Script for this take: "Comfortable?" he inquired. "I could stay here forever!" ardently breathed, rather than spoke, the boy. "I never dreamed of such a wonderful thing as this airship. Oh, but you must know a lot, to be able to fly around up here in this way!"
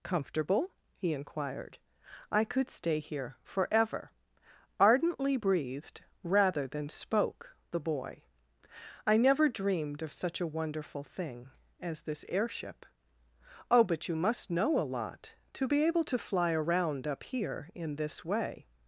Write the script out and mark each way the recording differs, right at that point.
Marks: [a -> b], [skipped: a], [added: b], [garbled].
"Comfortable?" he inquired. "I could stay here forever!" ardently breathed, rather than spoke, the boy. "I never dreamed of such a wonderful thing as this airship. Oh, but you must know a lot, to be able to fly around up here in this way!"